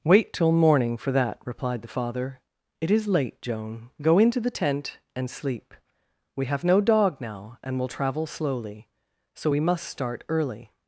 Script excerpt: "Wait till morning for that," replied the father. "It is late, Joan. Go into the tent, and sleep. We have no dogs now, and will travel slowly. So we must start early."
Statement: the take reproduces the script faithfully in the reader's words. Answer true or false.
false